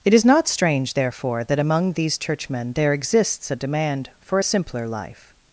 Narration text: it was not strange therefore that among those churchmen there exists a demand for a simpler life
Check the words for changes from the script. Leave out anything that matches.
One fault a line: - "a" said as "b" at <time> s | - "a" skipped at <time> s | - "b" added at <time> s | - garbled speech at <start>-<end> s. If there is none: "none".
- "was" said as "is" at 0.1 s
- "those" said as "these" at 1.9 s